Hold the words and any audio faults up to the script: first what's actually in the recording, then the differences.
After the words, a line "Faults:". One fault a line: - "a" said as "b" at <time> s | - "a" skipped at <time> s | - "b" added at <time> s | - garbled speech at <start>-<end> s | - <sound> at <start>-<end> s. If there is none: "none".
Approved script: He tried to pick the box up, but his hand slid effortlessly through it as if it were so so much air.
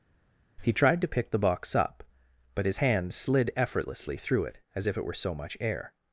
He tried to pick the box up, but his hand slid effortlessly through it as if it were so much air.
Faults:
- "so" skipped at 5.3 s